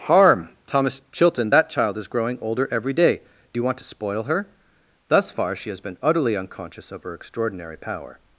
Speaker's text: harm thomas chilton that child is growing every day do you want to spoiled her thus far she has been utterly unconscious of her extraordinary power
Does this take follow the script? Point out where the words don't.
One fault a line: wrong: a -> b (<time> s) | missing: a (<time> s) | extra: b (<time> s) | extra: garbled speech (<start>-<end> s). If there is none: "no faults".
extra: older (2.4 s)
wrong: spoiled -> spoil (3.8 s)